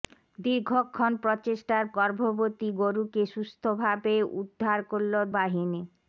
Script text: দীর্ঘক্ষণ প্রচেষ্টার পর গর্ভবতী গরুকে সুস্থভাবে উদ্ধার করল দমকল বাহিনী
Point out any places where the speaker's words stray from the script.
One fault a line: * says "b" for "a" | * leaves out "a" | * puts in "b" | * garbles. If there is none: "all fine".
* leaves out "পর"
* leaves out "দমকল"